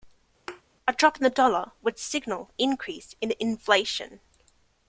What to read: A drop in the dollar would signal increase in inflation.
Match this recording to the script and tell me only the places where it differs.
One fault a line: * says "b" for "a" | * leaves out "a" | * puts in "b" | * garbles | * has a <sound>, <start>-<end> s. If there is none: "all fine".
* has a thud, 0.5-0.6 s